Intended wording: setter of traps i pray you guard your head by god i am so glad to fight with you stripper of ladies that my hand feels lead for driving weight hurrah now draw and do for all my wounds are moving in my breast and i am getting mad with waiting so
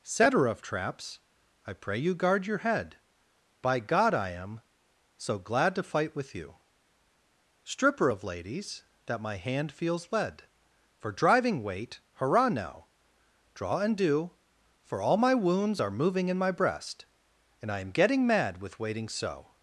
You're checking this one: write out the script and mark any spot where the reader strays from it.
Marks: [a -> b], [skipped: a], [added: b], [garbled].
setter of traps i pray you guard your head by god i am so glad to fight with you stripper of ladies that my hand feels lead for driving weight hurrah now draw and do for all my wounds are moving in my breast and i am getting mad with waiting so